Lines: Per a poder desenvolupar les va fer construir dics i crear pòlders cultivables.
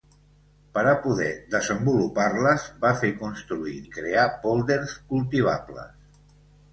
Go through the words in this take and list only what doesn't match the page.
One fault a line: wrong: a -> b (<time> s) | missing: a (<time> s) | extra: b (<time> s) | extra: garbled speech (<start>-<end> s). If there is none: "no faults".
missing: dics (3.8 s)